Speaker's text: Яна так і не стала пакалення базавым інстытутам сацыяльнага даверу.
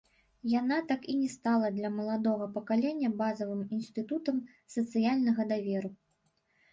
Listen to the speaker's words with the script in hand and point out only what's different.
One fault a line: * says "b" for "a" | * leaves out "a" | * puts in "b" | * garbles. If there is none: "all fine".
* puts in "для маладога"